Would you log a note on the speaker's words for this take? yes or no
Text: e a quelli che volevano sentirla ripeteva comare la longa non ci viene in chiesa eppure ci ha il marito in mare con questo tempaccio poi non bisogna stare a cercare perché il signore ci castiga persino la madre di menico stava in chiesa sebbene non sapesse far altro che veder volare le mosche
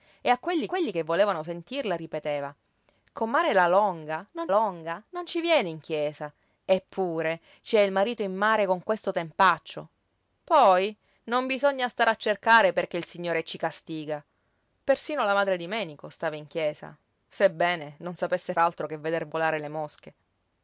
yes